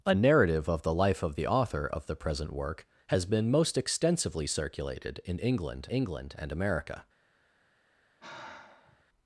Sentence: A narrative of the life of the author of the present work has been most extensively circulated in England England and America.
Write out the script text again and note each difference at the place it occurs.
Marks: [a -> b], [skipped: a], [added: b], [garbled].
A narrative of the life of the author of the present work has been most extensively circulated in England England and America.